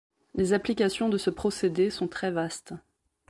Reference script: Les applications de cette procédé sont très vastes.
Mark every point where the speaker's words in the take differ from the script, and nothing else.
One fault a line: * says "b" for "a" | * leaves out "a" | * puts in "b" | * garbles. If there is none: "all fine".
* says "ce" for "cette"